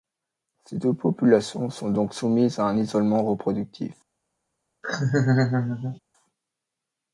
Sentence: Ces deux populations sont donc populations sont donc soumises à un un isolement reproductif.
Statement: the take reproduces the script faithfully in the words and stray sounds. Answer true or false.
false